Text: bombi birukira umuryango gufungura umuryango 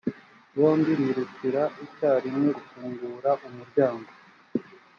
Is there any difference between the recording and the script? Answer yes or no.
yes